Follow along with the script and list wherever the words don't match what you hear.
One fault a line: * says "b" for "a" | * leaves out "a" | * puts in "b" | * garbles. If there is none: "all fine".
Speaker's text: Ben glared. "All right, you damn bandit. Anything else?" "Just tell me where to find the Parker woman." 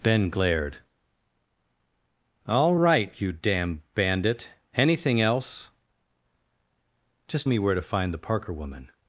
* leaves out "tell"